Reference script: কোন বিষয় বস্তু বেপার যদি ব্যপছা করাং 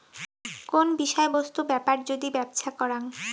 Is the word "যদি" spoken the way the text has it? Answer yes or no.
yes